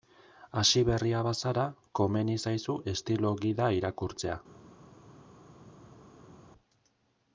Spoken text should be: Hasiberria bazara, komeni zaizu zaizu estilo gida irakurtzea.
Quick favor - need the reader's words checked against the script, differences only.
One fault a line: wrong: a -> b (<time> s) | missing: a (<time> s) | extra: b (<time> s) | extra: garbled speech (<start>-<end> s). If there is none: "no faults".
missing: zaizu (2.8 s)